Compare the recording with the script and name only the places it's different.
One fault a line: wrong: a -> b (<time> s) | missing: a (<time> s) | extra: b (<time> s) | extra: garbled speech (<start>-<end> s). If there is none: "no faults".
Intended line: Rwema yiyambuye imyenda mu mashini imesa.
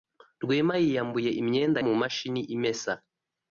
no faults